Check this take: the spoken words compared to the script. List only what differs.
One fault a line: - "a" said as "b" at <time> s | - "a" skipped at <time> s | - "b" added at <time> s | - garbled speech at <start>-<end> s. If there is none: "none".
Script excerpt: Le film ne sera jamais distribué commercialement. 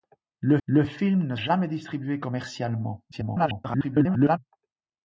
- "le" added at 0.6 s
- "sera" skipped at 1.4 s
- garbled speech at 3.1-4.4 s